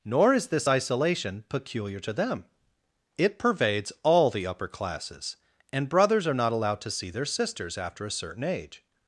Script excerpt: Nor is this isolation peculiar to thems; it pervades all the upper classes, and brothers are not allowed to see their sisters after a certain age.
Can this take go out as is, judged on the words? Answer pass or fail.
fail